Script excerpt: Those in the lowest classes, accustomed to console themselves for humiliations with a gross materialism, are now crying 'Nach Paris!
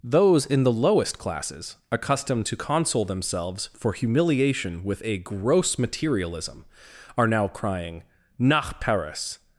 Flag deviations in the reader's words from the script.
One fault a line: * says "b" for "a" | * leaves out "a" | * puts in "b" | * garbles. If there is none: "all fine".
* says "humiliation" for "humiliations"